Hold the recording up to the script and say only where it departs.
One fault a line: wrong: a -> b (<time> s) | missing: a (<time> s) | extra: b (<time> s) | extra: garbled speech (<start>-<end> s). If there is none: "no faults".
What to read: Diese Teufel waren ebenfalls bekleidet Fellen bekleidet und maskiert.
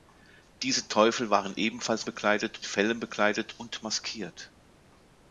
no faults